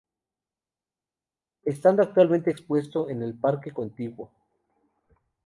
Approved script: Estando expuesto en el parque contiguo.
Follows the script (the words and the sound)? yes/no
no